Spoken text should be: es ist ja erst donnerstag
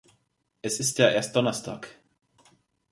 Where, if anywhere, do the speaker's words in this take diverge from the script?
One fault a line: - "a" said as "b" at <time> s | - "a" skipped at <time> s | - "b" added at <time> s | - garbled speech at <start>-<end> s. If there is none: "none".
none